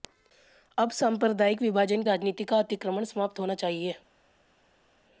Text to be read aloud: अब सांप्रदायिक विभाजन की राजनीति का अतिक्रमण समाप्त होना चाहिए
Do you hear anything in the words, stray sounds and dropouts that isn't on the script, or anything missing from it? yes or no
yes